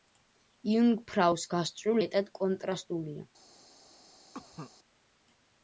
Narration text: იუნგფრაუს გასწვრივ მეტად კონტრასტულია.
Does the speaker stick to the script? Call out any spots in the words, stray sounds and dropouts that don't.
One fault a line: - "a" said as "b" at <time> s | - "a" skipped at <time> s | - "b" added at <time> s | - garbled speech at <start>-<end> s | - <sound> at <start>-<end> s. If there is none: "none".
- cough at 4.3-4.7 s